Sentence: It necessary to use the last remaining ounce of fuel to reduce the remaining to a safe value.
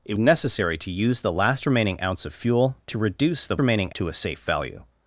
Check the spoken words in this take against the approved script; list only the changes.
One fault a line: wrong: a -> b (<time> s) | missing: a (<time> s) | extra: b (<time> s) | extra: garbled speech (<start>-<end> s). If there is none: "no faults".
no faults